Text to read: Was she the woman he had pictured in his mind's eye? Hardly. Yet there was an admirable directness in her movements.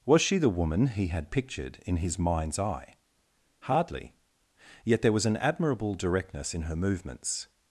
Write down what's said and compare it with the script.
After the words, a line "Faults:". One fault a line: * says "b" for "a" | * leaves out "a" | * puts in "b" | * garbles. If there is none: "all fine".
Was she the woman he had pictured in his mind's eye? Hardly. Yet there was an admirable directness in her movements.
Faults:
all fine